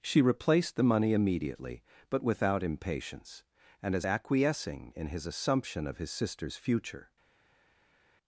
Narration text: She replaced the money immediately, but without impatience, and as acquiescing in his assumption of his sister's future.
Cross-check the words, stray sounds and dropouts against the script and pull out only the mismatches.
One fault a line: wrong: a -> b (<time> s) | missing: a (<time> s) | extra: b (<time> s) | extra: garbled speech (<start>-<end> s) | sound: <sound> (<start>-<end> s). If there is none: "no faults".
no faults